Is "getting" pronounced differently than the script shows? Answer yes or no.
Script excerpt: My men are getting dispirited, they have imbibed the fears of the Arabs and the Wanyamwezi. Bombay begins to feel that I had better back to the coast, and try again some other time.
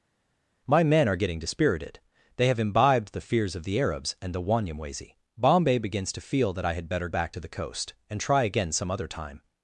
no